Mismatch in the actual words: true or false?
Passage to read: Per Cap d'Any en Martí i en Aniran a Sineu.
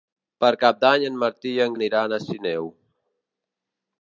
false